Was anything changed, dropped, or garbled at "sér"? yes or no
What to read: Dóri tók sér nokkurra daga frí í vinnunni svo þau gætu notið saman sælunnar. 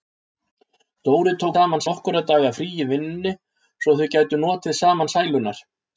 yes